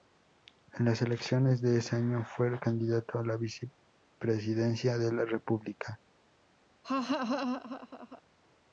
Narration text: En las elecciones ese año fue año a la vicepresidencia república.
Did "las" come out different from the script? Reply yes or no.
no